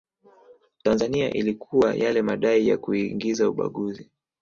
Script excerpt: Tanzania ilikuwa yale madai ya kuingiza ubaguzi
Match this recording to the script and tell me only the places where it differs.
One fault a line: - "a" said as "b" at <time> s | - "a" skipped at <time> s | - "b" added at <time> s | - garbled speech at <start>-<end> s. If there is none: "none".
none